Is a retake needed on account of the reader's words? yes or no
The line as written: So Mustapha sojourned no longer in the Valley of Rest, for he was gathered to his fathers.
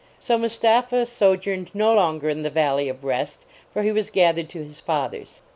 no